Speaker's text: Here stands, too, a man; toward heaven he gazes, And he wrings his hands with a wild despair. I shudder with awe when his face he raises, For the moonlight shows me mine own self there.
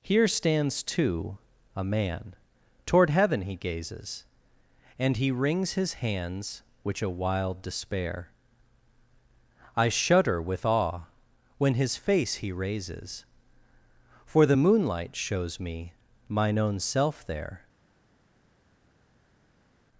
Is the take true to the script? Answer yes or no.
no